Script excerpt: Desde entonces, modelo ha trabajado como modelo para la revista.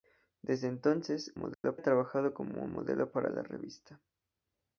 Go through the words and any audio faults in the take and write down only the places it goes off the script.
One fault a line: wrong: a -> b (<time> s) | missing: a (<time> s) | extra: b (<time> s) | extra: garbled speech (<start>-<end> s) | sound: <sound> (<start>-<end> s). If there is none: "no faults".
sound: dropout (1.5-1.6 s)